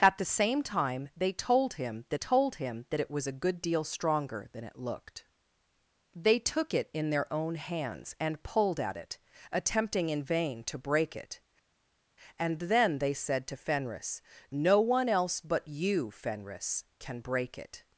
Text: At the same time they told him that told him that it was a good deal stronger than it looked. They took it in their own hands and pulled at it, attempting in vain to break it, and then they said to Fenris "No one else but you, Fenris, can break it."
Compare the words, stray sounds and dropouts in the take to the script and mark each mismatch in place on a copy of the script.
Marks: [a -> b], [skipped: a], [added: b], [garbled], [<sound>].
At the same time they told him that told him that it was a good deal stronger than it looked. They took it in their own hands and pulled at it, attempting in vain to break it, and then they said to Fenris "No one else but you, Fenris, can break it."